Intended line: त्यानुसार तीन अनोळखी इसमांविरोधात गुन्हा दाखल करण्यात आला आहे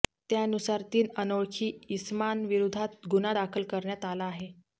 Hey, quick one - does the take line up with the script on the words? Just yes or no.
yes